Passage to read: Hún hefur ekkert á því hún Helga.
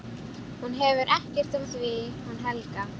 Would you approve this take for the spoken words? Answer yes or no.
yes